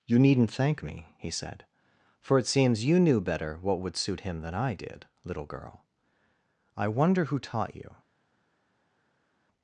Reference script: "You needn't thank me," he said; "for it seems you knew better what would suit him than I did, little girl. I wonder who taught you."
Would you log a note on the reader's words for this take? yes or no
no